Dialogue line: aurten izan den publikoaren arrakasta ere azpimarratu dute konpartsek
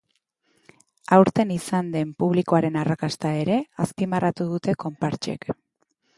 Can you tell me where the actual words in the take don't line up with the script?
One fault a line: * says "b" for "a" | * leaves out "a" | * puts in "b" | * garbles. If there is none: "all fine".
all fine